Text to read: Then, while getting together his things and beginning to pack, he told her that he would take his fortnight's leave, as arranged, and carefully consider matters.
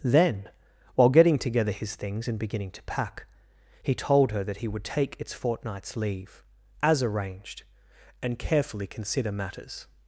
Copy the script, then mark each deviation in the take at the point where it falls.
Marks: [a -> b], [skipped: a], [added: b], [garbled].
Then, while getting together his things and beginning to pack, he told her that he would take [his -> its] fortnight's leave, as arranged, and carefully consider matters.